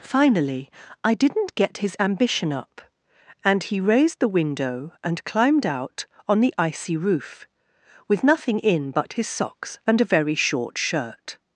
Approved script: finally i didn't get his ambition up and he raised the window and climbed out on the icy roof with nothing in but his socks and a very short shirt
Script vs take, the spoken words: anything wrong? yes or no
no